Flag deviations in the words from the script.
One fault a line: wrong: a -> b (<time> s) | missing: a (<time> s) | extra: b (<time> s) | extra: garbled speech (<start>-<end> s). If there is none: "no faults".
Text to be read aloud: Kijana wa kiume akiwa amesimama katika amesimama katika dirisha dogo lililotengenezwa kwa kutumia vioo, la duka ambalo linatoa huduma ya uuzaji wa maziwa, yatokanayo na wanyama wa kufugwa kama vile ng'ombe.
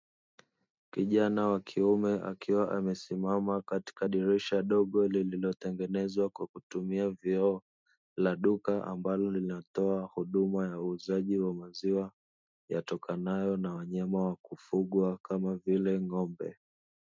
missing: amesimama katika (4.1 s)